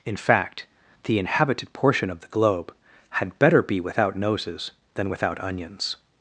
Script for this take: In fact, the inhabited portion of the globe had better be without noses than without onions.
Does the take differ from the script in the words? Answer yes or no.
no